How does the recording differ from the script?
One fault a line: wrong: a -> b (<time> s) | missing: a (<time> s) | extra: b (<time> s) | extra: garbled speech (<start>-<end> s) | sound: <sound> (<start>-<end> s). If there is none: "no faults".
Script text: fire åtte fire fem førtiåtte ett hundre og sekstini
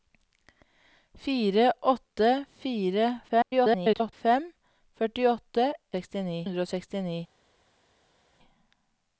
extra: garbled speech (3.3-4.1 s)
wrong: ett -> sekstini (6.0 s)